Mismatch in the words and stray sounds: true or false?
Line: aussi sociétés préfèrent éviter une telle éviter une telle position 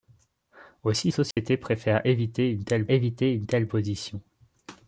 true